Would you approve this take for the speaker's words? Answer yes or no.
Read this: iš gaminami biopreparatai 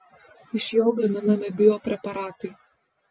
no